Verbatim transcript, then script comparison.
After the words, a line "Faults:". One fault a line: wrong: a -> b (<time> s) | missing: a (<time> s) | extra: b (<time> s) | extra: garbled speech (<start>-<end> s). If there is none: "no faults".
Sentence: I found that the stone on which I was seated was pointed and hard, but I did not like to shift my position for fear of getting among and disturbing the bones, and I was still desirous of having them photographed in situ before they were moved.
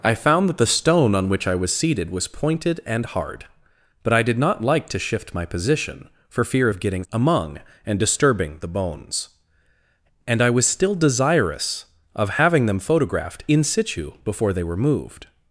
I found that the stone on which I was seated was pointed and hard, but I did not like to shift my position for fear of getting among and disturbing the bones, and I was still desirous of having them photographed in situ before they were moved.
Faults:
no faults